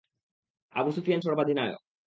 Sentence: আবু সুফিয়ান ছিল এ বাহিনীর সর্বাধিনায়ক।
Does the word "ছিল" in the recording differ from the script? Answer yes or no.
yes